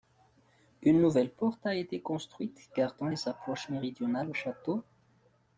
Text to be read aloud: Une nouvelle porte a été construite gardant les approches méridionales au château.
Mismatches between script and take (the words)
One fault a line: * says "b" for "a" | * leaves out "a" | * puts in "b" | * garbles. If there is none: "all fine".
all fine